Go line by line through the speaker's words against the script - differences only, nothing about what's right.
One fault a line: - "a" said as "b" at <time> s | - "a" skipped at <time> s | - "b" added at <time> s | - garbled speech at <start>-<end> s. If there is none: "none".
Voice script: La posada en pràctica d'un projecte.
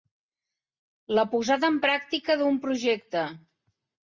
none